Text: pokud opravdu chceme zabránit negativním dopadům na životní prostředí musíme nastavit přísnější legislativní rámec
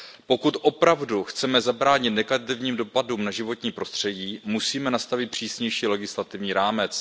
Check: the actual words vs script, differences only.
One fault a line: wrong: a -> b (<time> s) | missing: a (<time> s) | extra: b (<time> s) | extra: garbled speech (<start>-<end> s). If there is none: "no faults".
no faults